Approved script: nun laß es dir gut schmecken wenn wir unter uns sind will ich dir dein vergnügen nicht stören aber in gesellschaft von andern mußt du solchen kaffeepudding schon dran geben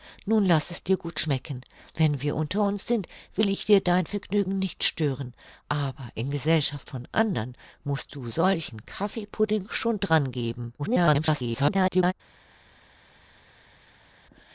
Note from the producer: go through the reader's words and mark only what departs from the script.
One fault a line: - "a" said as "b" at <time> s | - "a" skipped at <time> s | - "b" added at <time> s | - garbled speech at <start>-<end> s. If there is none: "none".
- garbled speech at 10.8-12.1 s